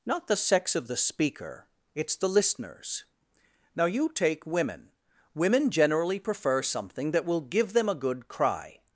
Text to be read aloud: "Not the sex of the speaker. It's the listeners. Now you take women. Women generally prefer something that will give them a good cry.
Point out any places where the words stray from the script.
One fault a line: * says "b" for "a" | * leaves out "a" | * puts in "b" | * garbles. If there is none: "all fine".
all fine